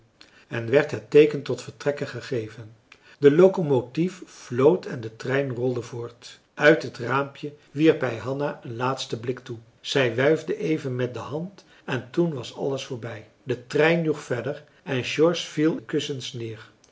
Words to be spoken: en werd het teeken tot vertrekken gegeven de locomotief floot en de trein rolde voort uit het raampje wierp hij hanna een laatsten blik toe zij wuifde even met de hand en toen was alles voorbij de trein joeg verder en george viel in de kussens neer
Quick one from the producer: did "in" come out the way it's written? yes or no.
no